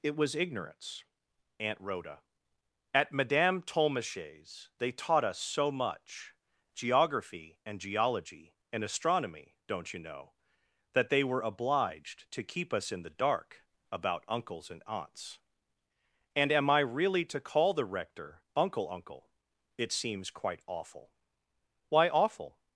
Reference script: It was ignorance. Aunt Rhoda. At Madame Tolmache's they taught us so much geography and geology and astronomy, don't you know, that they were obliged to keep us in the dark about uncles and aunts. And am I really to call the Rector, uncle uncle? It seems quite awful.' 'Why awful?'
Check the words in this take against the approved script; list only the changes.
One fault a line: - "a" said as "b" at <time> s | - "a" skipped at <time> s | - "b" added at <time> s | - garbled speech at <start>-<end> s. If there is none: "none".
none